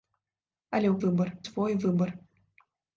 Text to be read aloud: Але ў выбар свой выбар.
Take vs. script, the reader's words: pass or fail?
pass